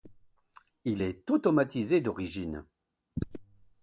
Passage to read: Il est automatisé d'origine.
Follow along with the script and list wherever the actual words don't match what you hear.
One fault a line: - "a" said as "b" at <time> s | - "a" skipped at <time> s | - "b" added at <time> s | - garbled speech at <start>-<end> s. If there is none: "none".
none